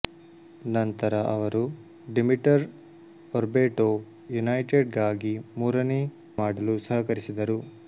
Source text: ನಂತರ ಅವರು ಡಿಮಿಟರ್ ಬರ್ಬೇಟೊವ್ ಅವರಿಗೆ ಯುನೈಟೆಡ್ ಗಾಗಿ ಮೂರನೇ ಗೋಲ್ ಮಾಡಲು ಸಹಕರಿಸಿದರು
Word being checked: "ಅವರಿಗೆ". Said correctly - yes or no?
no